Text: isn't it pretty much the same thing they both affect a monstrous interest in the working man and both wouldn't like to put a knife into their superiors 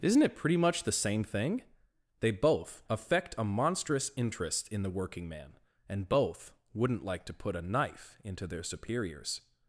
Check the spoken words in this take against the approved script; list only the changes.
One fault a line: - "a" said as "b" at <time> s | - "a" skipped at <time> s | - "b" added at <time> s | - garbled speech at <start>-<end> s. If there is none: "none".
none